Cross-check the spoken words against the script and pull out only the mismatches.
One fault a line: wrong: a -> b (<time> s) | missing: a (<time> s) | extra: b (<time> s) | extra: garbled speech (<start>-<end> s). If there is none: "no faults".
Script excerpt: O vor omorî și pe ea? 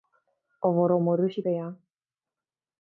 no faults